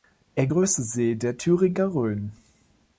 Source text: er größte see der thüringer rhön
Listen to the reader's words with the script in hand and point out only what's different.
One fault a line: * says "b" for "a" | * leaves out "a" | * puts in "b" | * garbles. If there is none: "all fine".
all fine